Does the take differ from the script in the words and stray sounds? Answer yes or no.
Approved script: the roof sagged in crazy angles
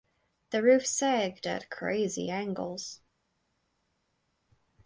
yes